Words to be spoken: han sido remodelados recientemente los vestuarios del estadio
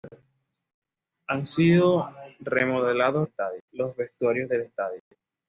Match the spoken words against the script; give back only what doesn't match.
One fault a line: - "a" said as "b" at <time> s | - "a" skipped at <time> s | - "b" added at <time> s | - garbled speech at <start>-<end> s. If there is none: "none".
- "recientemente" said as "estadio" at 3.2 s